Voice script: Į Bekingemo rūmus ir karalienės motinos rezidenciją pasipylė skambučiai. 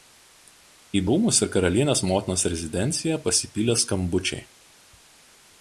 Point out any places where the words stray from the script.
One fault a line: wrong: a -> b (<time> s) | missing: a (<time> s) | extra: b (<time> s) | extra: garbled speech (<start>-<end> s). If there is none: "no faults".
missing: Bekingemo (1.0 s)